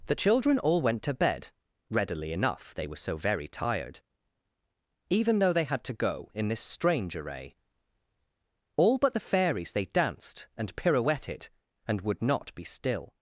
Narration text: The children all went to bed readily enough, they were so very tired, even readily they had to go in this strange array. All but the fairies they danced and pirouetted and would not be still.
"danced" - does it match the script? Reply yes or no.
yes